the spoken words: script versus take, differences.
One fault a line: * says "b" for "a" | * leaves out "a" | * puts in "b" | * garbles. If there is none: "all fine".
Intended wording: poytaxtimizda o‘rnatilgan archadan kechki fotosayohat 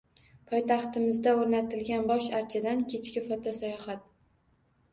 * puts in "bosh"